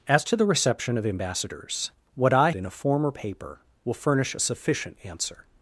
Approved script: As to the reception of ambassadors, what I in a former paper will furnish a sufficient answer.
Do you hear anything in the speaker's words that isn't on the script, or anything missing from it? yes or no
no